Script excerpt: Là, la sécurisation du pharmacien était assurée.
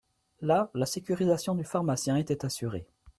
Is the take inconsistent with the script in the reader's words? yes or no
no